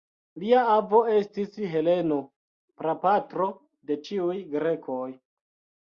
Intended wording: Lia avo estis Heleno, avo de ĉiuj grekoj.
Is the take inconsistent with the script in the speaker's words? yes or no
yes